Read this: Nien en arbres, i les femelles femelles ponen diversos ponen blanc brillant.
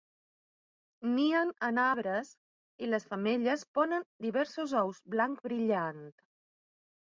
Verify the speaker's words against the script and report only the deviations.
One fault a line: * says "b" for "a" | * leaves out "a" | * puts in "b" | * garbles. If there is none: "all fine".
* leaves out "femelles"
* says "ous" for "ponen"